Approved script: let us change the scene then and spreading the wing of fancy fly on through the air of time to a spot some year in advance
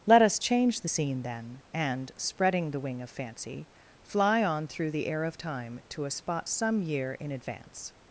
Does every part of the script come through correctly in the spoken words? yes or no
yes